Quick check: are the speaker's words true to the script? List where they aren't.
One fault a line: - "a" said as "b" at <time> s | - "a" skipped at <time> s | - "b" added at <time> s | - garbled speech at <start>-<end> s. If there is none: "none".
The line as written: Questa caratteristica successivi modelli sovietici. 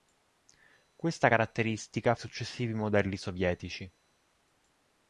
none